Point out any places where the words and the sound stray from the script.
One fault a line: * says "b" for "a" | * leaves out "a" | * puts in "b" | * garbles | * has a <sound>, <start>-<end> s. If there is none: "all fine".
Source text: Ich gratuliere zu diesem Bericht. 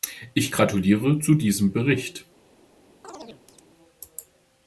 * has a chirp, 3.0-3.6 s